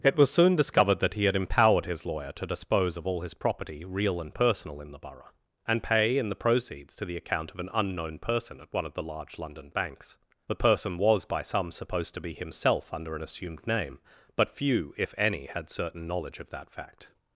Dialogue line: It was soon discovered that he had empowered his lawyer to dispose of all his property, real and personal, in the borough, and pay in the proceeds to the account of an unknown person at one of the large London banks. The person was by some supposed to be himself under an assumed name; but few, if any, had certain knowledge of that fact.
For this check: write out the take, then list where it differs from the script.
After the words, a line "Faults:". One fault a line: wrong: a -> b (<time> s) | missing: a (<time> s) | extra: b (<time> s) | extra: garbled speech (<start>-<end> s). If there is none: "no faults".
It was soon discovered that he had empowered his lawyer to dispose of all his property, real and personal, in the borough, and pay in the proceeds to the account of an unknown person at one of the large London banks. The person was by some supposed to be himself under an assumed name; but few, if any, had certain knowledge of that fact.
Faults:
no faults